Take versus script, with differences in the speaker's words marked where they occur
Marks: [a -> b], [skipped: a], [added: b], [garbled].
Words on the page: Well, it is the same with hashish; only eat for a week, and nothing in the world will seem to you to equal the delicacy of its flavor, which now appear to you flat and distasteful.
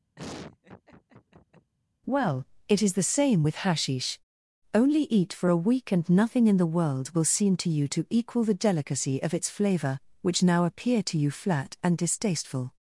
Well, it is the same with hashish; only eat for a week, and nothing in the world will seem to you to equal the delicacy of its flavor, which now appear to you flat and distasteful.